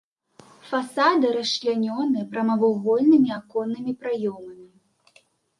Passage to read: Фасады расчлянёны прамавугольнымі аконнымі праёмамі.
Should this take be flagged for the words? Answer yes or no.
no